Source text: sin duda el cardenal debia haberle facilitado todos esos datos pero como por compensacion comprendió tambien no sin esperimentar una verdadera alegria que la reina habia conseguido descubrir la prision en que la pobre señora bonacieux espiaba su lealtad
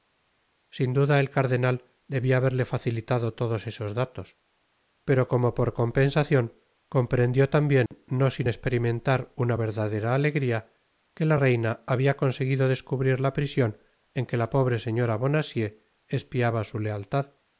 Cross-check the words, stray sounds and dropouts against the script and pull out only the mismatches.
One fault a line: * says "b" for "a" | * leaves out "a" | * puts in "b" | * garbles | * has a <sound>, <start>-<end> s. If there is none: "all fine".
* has a dropout, 7.9-7.9 s